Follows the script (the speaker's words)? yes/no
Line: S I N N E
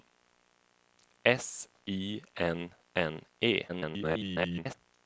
no